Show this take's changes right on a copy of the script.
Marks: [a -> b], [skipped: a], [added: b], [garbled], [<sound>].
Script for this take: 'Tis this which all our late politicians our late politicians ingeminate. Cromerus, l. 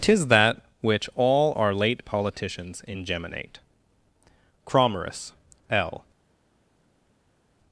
'Tis [this -> that] which all our late politicians [skipped: our late politicians] ingeminate. Cromerus, l.